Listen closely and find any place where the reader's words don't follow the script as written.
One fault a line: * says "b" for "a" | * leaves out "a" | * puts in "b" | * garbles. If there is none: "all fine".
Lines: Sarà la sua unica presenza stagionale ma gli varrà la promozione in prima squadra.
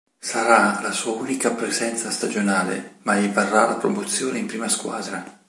all fine